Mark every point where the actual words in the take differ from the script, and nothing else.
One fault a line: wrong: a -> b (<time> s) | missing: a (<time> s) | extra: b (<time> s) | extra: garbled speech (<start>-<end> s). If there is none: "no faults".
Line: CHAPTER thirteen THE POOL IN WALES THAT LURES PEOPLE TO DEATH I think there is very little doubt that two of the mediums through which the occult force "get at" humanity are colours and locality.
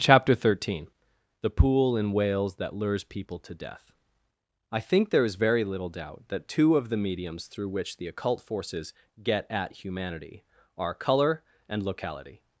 wrong: force -> forces (8.4 s)
wrong: colours -> colour (10.9 s)